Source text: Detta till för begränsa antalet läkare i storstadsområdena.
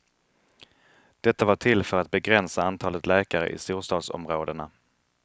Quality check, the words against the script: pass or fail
fail